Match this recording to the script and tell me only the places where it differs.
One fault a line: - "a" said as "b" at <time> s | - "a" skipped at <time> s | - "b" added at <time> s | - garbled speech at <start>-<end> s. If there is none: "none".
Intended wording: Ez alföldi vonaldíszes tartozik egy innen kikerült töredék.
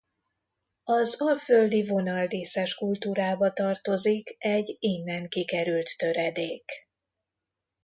- "Ez" said as "Az" at 0.8 s
- "kultúrába" added at 2.7 s